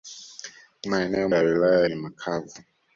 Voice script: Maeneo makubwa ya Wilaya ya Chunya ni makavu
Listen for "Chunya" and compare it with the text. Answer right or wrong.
wrong